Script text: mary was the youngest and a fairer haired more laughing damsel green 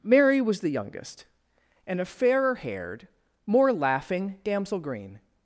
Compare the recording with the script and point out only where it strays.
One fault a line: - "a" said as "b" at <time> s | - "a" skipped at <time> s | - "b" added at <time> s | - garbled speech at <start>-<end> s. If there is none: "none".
none